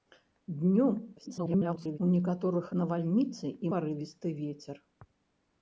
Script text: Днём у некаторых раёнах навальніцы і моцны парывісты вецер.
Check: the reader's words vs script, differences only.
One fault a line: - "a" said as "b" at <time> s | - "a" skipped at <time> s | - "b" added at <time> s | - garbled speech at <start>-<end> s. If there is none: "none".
- garbled speech at 1.2-2.0 s
- "раёнах" skipped at 2.7 s
- "моцны" skipped at 3.7 s